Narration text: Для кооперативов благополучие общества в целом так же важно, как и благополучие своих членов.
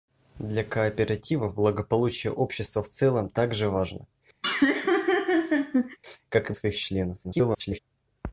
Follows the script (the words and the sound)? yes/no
no